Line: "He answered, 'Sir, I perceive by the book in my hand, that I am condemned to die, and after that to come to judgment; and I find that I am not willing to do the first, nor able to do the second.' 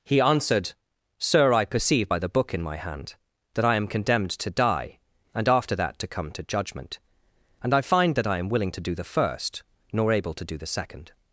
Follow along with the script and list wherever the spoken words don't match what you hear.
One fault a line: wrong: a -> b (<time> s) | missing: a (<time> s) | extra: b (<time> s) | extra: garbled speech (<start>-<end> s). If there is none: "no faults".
missing: not (8.5 s)